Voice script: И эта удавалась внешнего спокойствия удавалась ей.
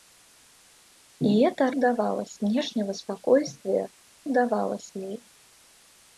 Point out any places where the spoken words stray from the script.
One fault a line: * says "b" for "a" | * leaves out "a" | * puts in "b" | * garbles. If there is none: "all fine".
all fine